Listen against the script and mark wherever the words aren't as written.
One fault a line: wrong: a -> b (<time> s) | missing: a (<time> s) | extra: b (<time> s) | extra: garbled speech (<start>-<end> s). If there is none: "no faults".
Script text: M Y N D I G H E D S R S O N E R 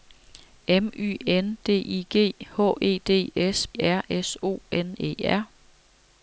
no faults